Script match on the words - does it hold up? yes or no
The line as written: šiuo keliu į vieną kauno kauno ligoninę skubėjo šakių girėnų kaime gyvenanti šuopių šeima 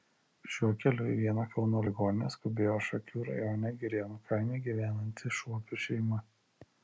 no